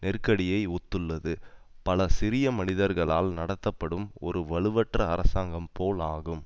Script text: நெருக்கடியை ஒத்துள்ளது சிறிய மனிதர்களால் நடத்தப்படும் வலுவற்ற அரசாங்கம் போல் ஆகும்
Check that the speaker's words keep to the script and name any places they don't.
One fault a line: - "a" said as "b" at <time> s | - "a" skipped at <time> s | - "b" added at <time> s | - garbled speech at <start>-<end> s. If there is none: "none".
- "பல" added at 1.9 s
- "ஒரு" added at 4.2 s